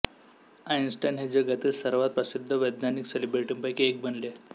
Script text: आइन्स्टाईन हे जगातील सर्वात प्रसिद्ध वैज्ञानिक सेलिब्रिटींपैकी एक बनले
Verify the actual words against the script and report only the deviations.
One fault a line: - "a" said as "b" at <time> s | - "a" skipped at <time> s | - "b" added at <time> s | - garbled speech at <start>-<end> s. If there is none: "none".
none